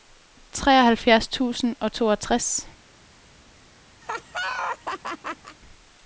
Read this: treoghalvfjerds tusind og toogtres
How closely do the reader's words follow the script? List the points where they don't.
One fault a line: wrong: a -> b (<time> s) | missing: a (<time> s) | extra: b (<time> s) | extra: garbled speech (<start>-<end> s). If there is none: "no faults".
no faults